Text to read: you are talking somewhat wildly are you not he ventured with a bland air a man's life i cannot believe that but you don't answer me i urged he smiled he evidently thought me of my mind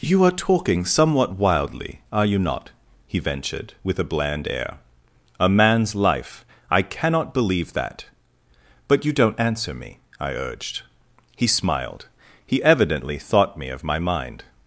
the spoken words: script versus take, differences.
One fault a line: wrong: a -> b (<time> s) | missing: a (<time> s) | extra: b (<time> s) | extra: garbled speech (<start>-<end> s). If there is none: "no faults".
no faults